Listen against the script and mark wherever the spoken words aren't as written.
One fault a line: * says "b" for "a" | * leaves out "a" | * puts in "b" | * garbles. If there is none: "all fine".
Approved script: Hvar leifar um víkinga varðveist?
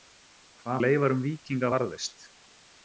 all fine